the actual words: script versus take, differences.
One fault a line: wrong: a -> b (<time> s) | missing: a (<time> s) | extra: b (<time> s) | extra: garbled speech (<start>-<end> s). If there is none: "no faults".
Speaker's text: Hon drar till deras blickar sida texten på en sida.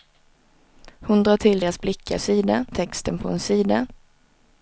no faults